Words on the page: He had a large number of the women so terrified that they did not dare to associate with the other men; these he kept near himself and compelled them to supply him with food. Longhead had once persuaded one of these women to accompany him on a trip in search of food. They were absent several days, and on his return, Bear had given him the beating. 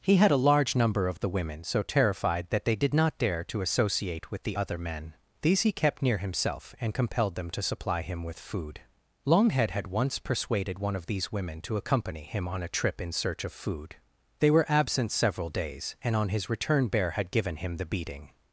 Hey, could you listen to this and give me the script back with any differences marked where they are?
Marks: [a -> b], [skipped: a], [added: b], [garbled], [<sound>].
He had a large number of the women so terrified that they did not dare to associate with the other men; these he kept near himself and compelled them to supply him with food. Longhead had once persuaded one of these women to accompany him on a trip in search of food. They were absent several days, and on his return, Bear had given him the beating.